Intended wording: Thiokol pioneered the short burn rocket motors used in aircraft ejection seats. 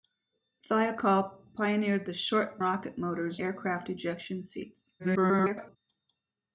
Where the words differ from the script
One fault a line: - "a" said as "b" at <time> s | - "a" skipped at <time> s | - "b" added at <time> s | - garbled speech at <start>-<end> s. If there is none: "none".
- "burn" skipped at 2.6 s
- "used in" skipped at 3.4 s
- garbled speech at 5.0-5.8 s